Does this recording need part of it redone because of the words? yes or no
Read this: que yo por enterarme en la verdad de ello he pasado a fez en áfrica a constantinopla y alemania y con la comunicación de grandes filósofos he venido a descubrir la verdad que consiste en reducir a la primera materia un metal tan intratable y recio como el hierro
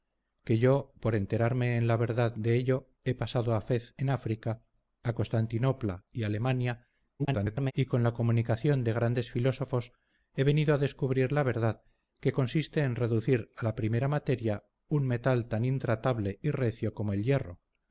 yes